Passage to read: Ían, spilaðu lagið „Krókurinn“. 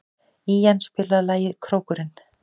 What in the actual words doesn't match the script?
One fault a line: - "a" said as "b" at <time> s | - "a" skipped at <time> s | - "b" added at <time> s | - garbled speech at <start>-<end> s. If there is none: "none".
none